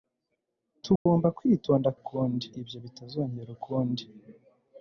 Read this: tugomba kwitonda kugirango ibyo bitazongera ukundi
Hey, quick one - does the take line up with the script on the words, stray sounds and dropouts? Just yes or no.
no